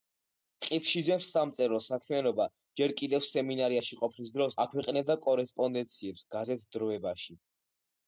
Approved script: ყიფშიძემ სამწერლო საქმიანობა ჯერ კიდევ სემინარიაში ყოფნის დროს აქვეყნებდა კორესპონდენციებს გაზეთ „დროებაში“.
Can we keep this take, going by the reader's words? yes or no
yes